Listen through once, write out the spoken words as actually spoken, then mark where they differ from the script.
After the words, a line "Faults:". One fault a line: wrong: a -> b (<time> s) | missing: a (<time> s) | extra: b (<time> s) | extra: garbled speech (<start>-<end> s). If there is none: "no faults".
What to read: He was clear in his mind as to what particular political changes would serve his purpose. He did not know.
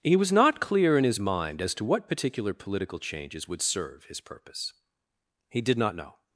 He was not clear in his mind as to what particular political changes would serve his purpose. He did not know.
Faults:
extra: not (0.3 s)